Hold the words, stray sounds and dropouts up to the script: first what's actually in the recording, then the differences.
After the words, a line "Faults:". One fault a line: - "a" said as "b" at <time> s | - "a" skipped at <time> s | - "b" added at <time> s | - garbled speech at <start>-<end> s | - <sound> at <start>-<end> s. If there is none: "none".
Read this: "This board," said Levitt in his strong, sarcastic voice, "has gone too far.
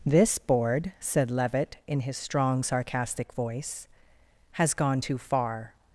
"This board," said Levitt in his strong, sarcastic voice, "has gone too far.
Faults:
none